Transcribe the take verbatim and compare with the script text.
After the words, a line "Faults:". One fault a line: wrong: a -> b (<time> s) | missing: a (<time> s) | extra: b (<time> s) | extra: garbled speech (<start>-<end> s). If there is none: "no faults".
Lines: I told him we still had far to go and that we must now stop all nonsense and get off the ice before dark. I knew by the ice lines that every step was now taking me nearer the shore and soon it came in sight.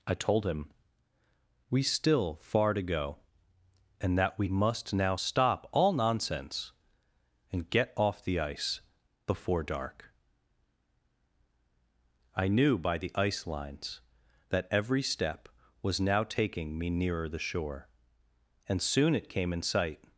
I told him we still far to go and that we must now stop all nonsense and get off the ice before dark. I knew by the ice lines that every step was now taking me nearer the shore and soon it came in sight.
Faults:
missing: had (2.4 s)